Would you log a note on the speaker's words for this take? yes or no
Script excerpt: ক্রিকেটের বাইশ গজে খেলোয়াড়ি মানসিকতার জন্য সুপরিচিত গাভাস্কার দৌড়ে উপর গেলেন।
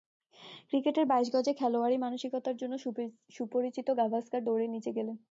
yes